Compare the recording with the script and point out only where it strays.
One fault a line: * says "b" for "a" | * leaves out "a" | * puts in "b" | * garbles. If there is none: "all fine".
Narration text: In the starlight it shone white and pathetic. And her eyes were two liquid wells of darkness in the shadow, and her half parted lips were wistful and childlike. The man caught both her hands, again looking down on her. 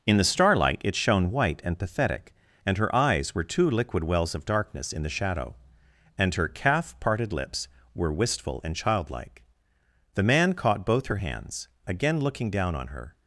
* says "calf" for "half"